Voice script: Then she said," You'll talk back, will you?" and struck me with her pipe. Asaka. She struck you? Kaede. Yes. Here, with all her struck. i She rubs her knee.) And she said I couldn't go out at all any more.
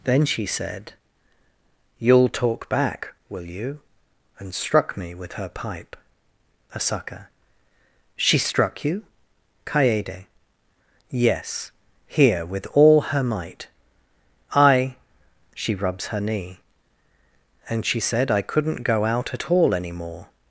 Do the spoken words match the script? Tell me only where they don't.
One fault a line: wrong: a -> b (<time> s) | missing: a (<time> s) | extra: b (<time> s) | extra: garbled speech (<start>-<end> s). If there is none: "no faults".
wrong: struck -> might (13.2 s)